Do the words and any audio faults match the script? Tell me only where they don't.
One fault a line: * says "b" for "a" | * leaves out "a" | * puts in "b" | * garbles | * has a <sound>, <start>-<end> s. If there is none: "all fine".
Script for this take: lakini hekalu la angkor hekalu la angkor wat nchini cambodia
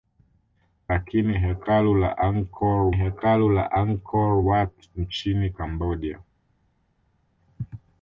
all fine